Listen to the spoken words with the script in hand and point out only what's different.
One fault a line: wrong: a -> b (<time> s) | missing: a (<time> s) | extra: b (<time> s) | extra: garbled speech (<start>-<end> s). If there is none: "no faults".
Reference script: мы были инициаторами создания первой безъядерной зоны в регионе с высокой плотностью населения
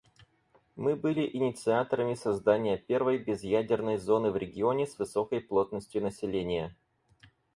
no faults